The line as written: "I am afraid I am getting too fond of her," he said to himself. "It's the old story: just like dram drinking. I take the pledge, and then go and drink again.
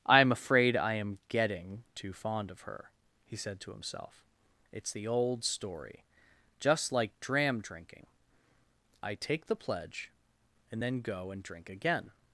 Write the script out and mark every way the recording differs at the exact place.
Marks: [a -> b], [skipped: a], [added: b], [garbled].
"I am afraid I am getting too fond of her," he said to himself. "It's the old story: just like dram drinking. I take the pledge, and then go and drink again.